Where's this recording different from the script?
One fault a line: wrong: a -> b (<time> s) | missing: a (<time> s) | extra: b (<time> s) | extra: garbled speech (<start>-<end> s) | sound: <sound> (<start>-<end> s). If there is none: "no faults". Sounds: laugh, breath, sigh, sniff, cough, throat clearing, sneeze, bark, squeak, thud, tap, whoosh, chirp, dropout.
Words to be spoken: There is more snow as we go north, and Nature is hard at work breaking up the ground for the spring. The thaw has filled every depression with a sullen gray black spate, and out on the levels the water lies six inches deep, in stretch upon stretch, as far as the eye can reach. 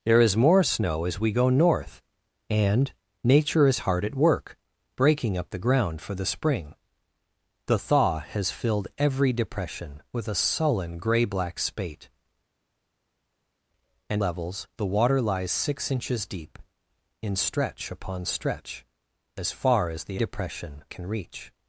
missing: out on the (14.2 s)
wrong: eye -> depression (20.2 s)